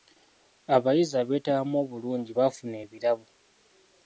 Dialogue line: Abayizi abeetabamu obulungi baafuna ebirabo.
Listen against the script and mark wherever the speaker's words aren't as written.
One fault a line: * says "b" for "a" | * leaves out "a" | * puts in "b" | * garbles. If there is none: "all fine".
all fine